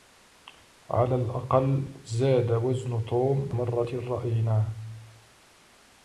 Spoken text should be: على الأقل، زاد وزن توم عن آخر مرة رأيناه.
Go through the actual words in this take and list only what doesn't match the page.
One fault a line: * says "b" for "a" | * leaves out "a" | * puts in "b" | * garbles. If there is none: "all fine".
* leaves out "عن آخر"